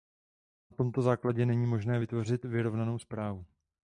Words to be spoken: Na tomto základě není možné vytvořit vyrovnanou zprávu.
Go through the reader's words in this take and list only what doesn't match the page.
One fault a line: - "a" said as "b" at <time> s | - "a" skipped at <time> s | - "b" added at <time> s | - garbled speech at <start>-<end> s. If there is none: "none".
none